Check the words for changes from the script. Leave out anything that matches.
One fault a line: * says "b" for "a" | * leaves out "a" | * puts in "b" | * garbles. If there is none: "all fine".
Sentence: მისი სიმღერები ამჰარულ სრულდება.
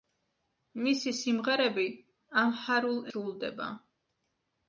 all fine